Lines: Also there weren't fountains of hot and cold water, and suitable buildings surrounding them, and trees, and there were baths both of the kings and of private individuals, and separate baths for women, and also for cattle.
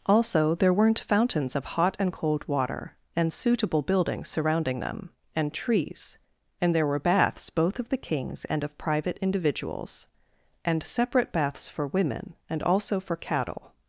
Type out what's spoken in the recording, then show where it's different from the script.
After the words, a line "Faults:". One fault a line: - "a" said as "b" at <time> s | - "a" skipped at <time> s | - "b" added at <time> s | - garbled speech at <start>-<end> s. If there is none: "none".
Also there weren't fountains of hot and cold water, and suitable buildings surrounding them, and trees, and there were baths both of the kings and of private individuals, and separate baths for women, and also for cattle.
Faults:
none